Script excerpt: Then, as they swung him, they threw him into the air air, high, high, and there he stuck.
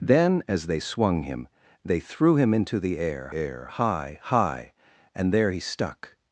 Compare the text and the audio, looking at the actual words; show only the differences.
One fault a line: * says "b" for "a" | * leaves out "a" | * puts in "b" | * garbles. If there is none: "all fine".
all fine